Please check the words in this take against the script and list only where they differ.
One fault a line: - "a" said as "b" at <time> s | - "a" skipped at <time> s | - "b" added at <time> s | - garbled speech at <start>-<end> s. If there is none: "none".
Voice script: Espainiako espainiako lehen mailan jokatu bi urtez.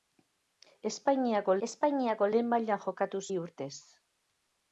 none